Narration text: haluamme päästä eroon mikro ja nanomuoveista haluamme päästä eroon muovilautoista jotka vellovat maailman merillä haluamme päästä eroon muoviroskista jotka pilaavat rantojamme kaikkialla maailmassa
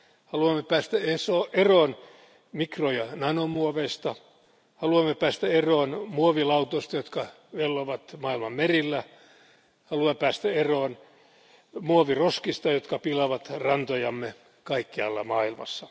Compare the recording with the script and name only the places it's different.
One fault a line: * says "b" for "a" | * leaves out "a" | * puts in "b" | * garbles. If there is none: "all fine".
all fine